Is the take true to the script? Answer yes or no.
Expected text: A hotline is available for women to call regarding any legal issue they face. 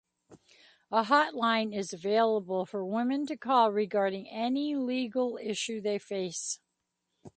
yes